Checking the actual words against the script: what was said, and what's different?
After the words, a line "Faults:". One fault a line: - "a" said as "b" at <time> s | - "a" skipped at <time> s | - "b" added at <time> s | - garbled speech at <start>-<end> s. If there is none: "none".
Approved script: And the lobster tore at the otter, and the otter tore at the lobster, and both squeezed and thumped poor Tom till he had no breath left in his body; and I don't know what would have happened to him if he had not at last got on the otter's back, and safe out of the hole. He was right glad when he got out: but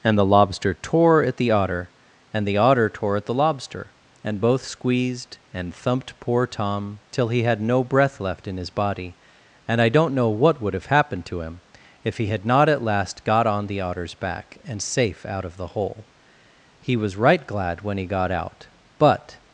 And the lobster tore at the otter, and the otter tore at the lobster, and both squeezed and thumped poor Tom till he had no breath left in his body; and I don't know what would have happened to him if he had not at last got on the otter's back, and safe out of the hole. He was right glad when he got out: but
Faults:
none